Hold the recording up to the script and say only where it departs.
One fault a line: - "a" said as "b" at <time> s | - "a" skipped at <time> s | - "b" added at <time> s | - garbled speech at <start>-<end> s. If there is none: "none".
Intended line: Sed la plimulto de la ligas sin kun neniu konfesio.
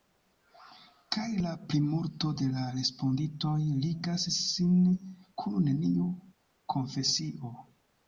- "Sed" said as "Kaj" at 1.1 s
- "respondintoj" added at 2.8 s